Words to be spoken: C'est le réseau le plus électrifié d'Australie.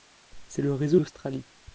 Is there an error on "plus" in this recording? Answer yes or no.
yes